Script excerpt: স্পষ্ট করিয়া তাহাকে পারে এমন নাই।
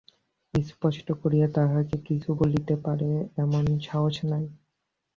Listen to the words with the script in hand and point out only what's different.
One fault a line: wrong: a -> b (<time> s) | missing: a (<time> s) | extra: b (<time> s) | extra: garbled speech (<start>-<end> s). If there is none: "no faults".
extra: কিছু বলিতে (2.1 s)
extra: সাহস (3.9 s)